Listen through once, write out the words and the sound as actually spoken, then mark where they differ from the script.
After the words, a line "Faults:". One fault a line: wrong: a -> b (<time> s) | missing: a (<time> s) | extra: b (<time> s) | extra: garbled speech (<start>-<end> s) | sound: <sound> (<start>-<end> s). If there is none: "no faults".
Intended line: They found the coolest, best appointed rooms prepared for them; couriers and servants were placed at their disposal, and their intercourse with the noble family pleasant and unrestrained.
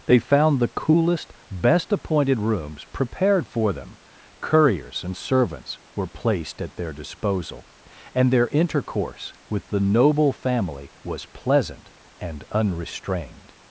They found the coolest, best appointed rooms prepared for them; couriers and servants were placed at their disposal, and their intercourse with the noble family was pleasant and unrestrained.
Faults:
extra: was (11.0 s)